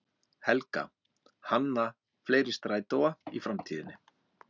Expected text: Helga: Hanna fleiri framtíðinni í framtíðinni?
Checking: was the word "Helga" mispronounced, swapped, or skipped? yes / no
no